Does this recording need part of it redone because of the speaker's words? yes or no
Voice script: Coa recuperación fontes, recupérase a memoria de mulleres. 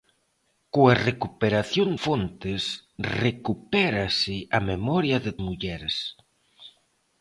no